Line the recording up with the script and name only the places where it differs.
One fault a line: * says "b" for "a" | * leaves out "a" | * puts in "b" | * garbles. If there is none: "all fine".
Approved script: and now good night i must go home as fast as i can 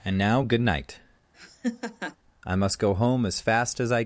* leaves out "can"